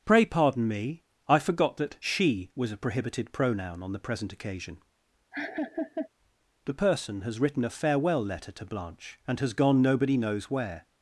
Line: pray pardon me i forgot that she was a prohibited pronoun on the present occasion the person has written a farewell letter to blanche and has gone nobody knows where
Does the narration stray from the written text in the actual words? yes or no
no